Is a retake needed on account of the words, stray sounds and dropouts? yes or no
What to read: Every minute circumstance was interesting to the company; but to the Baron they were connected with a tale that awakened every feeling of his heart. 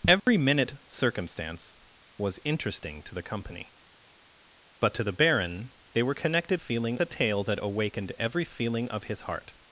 yes